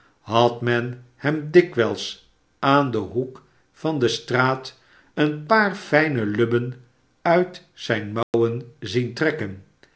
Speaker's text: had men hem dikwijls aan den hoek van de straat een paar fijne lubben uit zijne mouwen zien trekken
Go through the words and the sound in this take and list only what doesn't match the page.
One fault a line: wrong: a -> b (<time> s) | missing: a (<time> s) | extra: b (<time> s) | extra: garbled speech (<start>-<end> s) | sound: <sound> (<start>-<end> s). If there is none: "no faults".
sound: dropout (8.2-8.3 s)